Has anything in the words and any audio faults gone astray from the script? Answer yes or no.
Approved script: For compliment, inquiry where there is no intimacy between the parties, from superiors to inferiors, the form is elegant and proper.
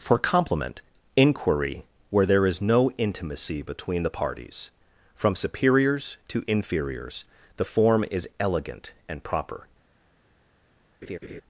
yes